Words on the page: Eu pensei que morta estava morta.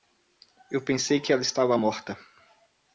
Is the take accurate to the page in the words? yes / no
no